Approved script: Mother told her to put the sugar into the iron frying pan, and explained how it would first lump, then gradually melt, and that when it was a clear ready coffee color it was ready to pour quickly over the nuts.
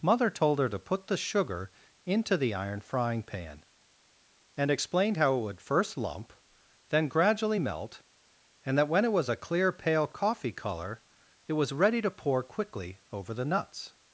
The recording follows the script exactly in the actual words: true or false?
false